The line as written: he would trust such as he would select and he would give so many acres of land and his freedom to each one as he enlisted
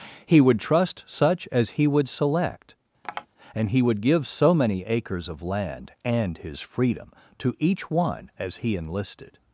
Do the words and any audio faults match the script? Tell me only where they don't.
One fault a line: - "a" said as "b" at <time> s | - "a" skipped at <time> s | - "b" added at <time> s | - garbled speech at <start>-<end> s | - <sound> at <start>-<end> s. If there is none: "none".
- tap at 3.0-3.3 s